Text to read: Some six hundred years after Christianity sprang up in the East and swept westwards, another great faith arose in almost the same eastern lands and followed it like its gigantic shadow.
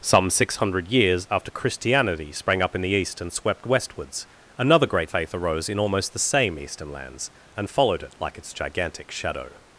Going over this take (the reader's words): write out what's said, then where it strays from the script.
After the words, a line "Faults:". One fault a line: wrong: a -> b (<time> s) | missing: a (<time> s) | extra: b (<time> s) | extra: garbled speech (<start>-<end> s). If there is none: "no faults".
Some six hundred years after Christianity sprang up in the East and swept westwards, another great faith arose in almost the same eastern lands and followed it like its gigantic shadow.
Faults:
no faults